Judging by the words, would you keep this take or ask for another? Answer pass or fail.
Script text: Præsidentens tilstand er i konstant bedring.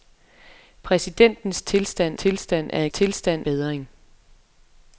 fail